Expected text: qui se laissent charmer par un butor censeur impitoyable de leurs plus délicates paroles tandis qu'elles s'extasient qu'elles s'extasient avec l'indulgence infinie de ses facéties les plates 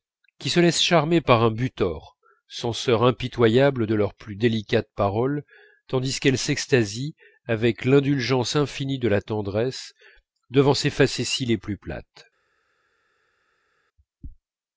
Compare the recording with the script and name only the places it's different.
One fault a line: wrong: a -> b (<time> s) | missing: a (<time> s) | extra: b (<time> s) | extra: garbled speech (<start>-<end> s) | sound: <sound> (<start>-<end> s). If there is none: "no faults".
missing: qu'elles s'extasient (7.1 s)
extra: la tendresse devant (9.1 s)
extra: plus (11.6 s)